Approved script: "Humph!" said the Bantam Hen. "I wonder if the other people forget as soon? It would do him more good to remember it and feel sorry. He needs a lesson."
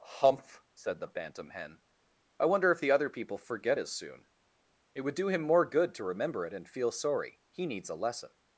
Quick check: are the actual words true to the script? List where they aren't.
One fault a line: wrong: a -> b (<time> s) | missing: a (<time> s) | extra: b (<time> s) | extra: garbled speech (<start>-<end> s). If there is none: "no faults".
no faults